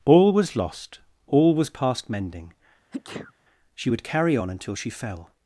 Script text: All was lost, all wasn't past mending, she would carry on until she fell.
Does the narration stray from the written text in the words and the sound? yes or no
yes